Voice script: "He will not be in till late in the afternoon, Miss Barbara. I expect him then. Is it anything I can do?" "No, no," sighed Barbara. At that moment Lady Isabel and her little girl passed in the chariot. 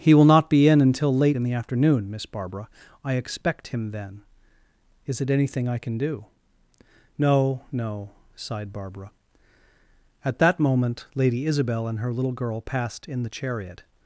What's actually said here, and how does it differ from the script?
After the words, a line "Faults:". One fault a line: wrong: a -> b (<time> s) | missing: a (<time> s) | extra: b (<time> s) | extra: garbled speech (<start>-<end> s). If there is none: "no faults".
"He will not be in until late in the afternoon, Miss Barbara. I expect him then. Is it anything I can do?" "No, no," sighed Barbara. At that moment Lady Isabel and her little girl passed in the chariot.
Faults:
wrong: till -> until (0.8 s)